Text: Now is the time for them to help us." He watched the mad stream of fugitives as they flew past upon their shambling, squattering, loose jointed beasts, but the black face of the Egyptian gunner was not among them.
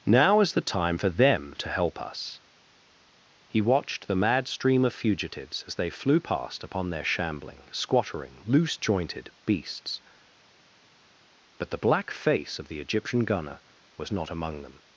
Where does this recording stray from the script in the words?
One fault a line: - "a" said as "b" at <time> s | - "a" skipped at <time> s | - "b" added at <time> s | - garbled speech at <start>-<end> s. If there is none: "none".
none